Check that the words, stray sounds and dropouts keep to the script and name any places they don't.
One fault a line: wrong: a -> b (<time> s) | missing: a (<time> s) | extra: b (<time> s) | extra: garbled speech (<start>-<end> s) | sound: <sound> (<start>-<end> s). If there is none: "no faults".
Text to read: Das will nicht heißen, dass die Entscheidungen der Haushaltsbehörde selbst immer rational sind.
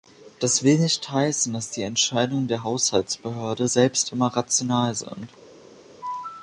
no faults